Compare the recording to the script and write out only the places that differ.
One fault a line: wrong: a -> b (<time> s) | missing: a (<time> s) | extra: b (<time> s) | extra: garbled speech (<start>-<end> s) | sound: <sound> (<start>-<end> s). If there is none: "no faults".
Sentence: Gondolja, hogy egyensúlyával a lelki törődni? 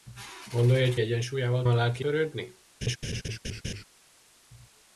sound: laugh (2.8-3.8 s)